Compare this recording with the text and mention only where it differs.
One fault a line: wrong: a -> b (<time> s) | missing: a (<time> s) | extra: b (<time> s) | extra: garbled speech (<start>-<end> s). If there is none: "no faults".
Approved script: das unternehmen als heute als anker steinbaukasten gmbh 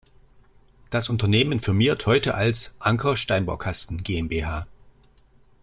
wrong: als -> firmiert (1.6 s)